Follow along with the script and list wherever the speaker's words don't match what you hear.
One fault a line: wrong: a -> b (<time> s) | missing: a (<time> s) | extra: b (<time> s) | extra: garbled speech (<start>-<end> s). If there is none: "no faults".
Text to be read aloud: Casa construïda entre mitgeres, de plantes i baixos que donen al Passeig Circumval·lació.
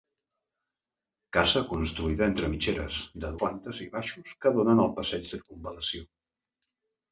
no faults